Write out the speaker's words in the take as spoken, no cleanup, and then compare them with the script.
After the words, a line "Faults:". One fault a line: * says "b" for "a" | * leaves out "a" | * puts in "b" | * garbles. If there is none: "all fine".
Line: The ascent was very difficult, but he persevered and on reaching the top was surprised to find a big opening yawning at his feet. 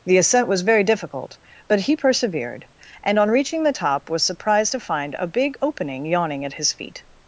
The ascent was very difficult, but he persevered and on reaching the top was surprised to find a big opening yawning at his feet.
Faults:
all fine